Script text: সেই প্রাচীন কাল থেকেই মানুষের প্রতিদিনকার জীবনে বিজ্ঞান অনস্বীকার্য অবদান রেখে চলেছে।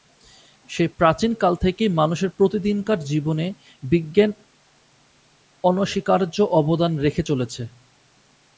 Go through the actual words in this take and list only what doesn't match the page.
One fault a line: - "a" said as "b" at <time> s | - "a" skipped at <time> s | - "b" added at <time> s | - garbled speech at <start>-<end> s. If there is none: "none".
none